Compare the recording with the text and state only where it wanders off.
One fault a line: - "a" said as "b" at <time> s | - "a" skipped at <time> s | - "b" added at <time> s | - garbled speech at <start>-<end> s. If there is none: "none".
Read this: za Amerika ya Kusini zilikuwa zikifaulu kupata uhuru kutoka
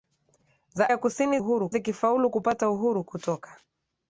- "Amerika" skipped at 0.9 s
- "zilikuwa" said as "uhuru" at 1.4 s